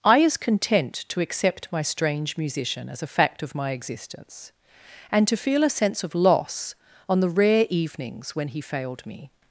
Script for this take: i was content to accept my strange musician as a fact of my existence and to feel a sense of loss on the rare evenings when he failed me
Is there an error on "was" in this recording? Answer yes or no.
yes